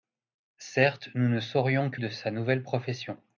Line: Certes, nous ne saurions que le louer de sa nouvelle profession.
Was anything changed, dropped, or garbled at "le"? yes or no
yes